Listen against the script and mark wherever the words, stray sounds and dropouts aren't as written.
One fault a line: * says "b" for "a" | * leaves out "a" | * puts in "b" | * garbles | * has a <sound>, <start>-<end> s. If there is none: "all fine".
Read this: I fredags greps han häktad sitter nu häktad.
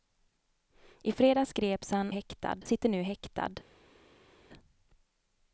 all fine